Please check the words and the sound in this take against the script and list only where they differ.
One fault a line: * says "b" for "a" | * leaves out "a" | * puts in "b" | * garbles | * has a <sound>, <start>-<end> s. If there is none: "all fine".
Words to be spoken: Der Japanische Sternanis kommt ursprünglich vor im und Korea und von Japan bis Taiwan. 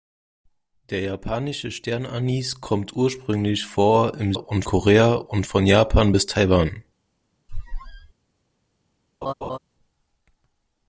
* has a squeak, 7.5-8.1 s
* has a laugh, 9.2-9.6 s